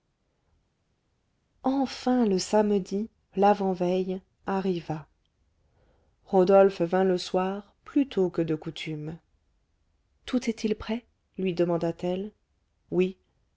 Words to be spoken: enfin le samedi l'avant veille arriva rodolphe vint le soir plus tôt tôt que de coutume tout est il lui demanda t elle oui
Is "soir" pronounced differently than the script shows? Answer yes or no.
no